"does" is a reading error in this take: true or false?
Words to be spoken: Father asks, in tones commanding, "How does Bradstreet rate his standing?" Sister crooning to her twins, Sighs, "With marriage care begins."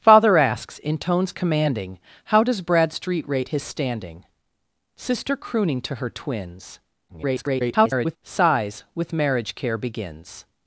false